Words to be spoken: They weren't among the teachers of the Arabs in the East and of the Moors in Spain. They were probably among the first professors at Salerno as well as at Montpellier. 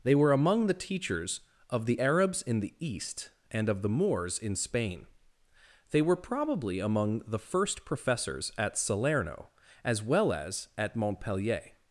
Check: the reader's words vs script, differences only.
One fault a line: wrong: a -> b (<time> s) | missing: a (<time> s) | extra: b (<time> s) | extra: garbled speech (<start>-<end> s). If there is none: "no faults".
wrong: weren't -> were (0.1 s)